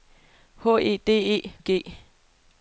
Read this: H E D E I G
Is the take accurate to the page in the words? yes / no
yes